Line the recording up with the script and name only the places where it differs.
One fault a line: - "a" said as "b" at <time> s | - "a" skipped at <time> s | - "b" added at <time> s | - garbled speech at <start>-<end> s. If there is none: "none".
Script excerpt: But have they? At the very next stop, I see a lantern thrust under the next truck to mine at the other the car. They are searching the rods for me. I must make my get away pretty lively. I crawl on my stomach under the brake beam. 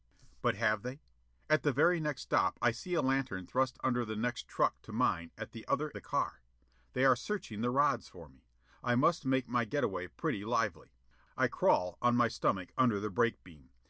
none